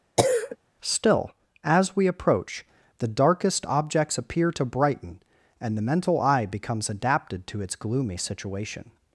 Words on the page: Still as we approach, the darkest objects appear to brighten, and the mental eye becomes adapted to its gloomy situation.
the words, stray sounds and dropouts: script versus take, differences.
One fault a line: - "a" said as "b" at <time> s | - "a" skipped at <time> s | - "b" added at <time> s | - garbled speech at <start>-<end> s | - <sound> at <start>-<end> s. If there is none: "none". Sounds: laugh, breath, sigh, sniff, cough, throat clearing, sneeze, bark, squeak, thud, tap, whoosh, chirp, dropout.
- cough at 0.2-0.6 s